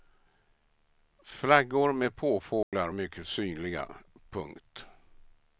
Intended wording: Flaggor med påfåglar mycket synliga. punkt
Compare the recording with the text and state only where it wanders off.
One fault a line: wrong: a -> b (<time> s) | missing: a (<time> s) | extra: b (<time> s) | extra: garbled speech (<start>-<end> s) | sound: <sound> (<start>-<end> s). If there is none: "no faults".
sound: dropout (2.6-2.7 s)